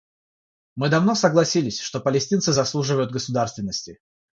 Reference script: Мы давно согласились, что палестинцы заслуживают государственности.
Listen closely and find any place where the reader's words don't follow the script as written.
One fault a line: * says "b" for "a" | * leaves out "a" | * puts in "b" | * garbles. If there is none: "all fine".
all fine